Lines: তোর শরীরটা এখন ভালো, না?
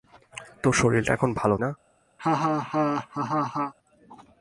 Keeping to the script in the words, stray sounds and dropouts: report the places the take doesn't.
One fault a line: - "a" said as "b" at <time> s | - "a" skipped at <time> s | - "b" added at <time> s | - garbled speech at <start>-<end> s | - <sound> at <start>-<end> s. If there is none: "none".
- laugh at 2.2-3.7 s